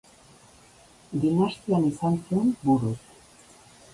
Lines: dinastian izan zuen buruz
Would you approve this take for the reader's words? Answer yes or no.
yes